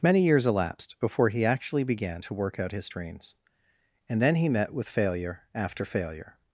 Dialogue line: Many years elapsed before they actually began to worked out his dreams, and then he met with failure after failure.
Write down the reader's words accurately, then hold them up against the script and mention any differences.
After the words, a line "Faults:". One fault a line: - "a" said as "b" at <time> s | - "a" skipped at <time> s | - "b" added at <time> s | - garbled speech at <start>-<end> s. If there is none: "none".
Many years elapsed before he actually began to work out his dreams, and then he met with failure after failure.
Faults:
- "they" said as "he" at 1.3 s
- "worked" said as "work" at 2.3 s